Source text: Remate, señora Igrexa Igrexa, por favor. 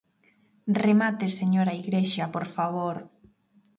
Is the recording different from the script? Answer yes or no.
yes